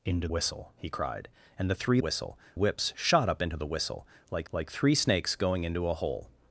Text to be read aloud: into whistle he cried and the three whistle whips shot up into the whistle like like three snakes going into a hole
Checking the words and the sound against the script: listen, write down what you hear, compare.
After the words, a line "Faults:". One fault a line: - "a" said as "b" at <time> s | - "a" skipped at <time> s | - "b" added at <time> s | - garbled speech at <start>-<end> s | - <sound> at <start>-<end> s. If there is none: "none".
into whistle he cried and the three whistle whips shot up into the whistle like like three snakes going into a hole
Faults:
none